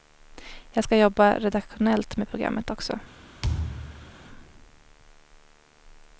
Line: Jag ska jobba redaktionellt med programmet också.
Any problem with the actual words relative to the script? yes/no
no